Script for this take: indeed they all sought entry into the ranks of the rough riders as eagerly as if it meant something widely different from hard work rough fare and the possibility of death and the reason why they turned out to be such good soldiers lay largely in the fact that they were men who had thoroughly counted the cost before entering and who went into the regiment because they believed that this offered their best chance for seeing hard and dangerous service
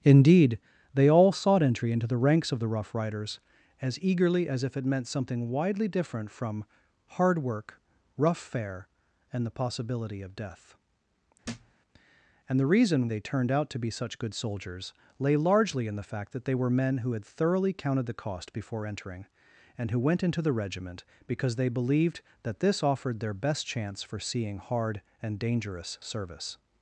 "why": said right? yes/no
no